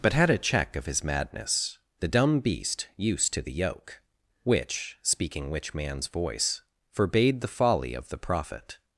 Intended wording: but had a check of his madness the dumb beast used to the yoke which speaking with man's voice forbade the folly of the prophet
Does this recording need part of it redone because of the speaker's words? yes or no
yes